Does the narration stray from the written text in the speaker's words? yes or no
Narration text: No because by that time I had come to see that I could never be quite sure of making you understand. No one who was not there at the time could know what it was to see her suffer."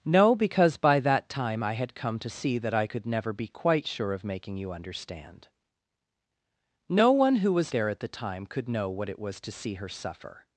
yes